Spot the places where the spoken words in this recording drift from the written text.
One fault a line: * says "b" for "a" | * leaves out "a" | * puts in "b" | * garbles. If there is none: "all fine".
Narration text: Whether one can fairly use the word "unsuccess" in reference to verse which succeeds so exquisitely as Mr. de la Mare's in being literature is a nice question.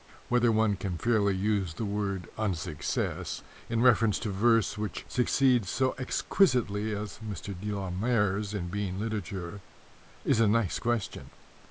all fine